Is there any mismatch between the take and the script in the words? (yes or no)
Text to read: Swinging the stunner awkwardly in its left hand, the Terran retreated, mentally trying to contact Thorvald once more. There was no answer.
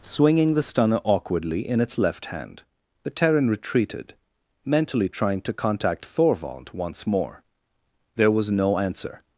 no